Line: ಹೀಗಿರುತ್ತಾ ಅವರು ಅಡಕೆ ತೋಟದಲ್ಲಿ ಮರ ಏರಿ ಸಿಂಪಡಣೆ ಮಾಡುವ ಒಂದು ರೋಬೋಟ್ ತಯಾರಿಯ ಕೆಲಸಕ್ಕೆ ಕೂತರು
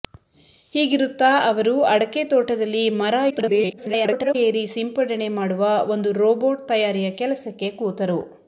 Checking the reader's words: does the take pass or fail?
fail